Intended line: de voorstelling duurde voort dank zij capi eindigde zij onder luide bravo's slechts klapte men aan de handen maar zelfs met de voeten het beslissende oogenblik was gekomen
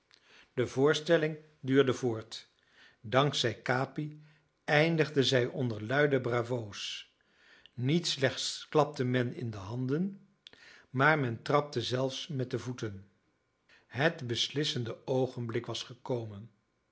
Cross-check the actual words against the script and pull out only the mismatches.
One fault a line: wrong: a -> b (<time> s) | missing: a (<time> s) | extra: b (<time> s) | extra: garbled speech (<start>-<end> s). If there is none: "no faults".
extra: niet (7.7 s)
wrong: aan -> in (9.3 s)
extra: men trapte (11.2 s)